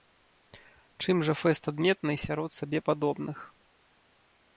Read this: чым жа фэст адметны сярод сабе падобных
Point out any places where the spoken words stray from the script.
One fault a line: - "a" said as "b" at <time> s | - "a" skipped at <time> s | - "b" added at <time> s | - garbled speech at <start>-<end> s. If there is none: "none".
none